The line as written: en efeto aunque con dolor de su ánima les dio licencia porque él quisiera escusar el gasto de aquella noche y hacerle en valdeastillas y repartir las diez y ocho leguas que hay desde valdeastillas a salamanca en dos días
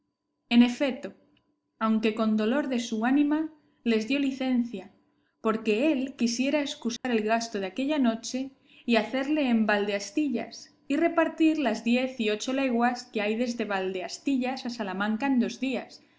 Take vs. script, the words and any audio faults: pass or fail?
fail